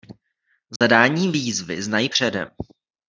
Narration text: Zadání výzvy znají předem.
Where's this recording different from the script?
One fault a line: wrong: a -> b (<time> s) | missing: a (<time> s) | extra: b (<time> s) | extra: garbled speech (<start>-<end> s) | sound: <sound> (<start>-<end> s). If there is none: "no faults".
sound: dropout (0.8-0.8 s)